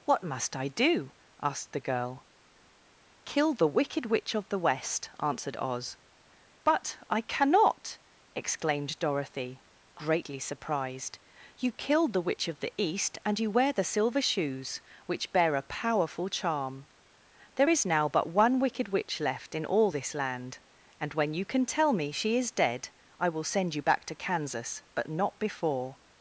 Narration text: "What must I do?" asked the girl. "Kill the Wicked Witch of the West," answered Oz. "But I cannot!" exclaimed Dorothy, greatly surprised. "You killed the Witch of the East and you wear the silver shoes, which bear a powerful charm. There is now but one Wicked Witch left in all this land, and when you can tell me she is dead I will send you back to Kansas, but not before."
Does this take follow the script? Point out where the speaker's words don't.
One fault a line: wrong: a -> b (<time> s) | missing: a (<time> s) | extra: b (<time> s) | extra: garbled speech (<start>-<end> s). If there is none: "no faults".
no faults